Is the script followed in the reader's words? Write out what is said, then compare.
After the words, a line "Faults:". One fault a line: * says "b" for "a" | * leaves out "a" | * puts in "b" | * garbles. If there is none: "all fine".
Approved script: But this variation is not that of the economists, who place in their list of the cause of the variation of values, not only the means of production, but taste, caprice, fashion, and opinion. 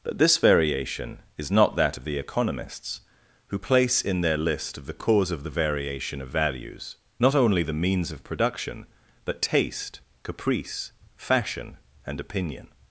But this variation is not that of the economists, who place in their list of the cause of the variation of values, not only the means of production, but taste, caprice, fashion, and opinion.
Faults:
all fine